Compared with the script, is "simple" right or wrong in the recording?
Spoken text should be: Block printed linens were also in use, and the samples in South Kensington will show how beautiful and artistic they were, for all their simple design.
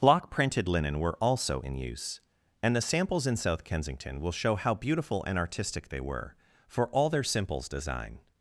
wrong